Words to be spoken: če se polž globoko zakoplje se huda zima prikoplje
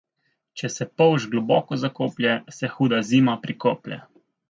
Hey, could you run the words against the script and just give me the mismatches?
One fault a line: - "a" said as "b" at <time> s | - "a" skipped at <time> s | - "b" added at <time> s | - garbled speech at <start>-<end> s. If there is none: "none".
none